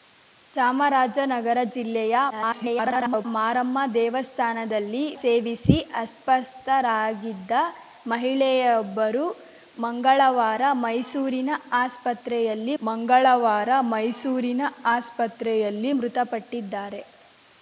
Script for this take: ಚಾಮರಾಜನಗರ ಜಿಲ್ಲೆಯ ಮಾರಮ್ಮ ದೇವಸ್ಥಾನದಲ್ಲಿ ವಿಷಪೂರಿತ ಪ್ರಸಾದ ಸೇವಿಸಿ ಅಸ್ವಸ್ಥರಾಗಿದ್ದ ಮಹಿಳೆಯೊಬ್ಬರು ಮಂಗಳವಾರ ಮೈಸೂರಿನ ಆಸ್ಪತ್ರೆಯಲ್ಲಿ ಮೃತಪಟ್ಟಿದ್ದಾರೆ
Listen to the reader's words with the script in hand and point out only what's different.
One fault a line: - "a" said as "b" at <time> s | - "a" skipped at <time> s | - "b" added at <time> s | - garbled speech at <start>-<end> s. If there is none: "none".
- garbled speech at 2.3-3.2 s
- "ವಿಷಪೂರಿತ ಪ್ರಸಾದ" skipped at 5.0 s
- "ಮಂಗಳವಾರ ಮೈಸೂರಿನ ಆಸ್ಪತ್ರೆಯಲ್ಲಿ" added at 12.8 s